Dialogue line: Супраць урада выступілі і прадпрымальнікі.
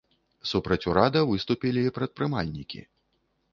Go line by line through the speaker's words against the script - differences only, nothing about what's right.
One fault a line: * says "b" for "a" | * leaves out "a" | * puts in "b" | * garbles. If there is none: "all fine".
all fine